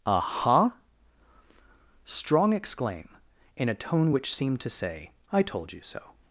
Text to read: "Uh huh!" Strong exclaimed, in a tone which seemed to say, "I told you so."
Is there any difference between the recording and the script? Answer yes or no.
yes